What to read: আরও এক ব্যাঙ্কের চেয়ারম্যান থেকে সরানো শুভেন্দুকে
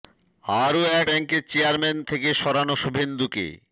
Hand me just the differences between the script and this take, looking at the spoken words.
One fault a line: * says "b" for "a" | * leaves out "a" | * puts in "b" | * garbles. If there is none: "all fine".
all fine